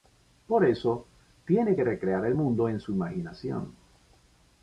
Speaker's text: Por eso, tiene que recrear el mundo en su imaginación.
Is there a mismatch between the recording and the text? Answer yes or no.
no